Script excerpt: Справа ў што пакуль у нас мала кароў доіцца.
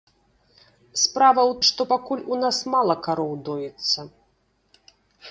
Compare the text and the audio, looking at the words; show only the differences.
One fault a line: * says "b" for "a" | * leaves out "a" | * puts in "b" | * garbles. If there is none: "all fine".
all fine